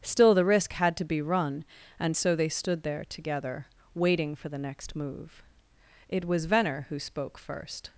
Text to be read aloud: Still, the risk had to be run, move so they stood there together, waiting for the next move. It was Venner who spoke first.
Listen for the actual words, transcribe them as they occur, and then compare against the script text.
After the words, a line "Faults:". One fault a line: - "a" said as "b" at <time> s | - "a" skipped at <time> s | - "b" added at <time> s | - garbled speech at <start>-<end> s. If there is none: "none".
Still, the risk had to be run, and so they stood there together, waiting for the next move. It was Venner who spoke first.
Faults:
- "move" said as "and" at 2.0 s